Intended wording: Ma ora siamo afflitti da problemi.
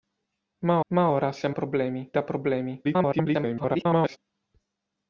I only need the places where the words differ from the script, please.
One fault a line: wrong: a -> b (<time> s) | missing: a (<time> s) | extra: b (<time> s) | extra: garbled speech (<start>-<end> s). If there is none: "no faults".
extra: ma (0.9 s)
wrong: afflitti -> problemi (1.5 s)
extra: garbled speech (2.8-4.2 s)